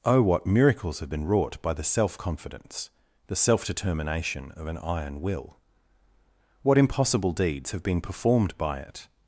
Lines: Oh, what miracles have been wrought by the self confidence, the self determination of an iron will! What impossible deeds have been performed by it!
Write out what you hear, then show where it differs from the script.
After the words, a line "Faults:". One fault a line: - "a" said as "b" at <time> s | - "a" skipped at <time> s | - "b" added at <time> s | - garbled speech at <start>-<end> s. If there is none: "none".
Oh, what miracles have been wrought by the self confidence, the self determination of an iron will! What impossible deeds have been performed by it!
Faults:
none